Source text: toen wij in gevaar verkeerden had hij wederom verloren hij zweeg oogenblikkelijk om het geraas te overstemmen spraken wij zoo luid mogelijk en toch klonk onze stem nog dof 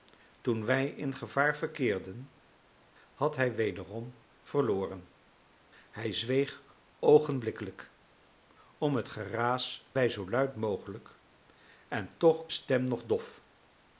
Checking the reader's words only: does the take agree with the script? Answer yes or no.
no